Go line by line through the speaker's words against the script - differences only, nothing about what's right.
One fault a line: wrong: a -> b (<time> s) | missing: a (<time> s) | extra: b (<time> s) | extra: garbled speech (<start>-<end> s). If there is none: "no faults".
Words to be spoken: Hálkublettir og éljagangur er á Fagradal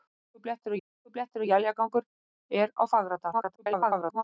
extra: hálkublettir (0.8 s)
extra: garbled speech (3.3-4.2 s)